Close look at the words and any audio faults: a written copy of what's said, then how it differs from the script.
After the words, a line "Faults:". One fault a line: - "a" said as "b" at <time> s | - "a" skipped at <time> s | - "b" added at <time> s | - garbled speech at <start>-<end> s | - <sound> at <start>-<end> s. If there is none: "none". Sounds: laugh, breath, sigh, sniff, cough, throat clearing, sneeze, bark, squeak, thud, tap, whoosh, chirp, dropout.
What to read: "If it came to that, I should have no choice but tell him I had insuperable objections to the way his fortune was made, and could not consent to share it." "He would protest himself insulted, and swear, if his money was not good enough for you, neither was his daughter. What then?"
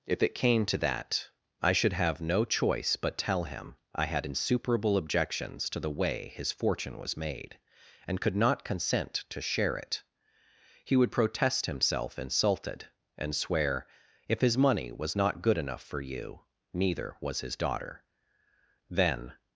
"If it came to that, I should have no choice but tell him I had insuperable objections to the way his fortune was made, and could not consent to share it." "He would protest himself insulted, and swear, if his money was not good enough for you, neither was his daughter. then?"
Faults:
- "What" skipped at 18.0 s